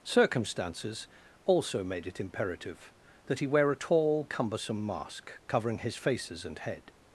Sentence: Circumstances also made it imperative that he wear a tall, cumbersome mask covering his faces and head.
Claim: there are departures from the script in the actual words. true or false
false